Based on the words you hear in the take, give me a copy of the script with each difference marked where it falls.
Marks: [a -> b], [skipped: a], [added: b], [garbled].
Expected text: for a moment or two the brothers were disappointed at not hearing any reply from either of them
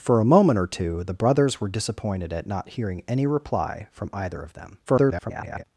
for a moment or two the brothers were disappointed at not hearing any reply from either of them [garbled]